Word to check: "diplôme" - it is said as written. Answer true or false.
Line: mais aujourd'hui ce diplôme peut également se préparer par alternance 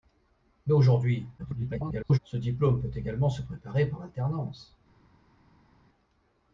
true